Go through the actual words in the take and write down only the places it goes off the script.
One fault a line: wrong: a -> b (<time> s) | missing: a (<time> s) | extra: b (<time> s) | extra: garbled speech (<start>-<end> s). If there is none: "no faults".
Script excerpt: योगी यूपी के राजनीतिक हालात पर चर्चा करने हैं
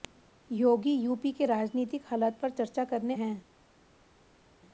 no faults